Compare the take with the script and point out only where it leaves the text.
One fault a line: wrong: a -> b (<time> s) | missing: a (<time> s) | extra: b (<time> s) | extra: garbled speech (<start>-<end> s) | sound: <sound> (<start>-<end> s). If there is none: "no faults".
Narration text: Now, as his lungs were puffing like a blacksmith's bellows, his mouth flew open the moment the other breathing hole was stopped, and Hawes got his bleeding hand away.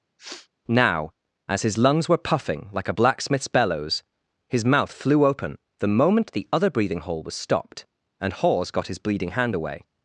sound: sniff (0.2-0.5 s)